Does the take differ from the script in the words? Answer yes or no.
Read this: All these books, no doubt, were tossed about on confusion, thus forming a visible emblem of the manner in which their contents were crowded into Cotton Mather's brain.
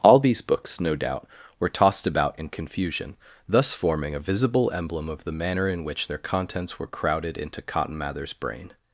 yes